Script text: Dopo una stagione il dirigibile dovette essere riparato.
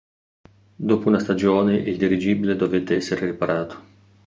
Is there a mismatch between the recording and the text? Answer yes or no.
no